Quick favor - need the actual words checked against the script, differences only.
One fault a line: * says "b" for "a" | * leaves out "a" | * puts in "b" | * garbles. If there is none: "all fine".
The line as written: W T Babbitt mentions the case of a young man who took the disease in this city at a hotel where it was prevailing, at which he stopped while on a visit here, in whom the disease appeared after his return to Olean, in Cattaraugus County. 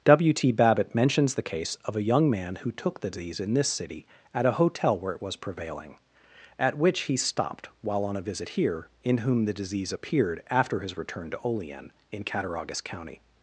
all fine